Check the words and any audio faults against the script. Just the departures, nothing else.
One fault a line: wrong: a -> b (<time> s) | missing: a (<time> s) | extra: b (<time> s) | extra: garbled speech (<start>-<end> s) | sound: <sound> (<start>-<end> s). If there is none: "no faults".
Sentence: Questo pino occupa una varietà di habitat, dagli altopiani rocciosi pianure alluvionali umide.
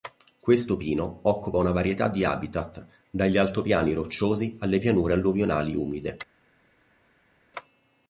extra: alle (4.6 s)